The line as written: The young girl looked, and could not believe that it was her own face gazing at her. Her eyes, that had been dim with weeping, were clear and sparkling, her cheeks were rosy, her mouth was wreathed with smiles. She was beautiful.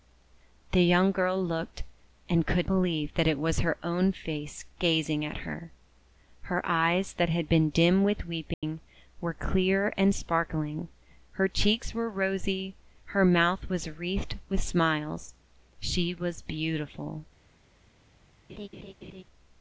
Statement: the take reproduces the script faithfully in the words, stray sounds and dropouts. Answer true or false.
false